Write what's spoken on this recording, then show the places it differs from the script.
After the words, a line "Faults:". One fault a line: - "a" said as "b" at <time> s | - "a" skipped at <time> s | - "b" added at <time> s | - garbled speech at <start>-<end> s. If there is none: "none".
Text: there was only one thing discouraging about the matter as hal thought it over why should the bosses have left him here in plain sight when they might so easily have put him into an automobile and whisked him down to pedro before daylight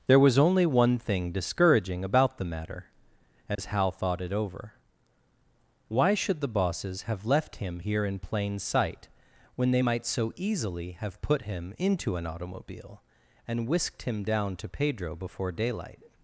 there was only one thing discouraging about the matter as hal thought it over why should the bosses have left him here in plain sight when they might so easily have put him into an automobile and whisked him down to pedro before daylight
Faults:
none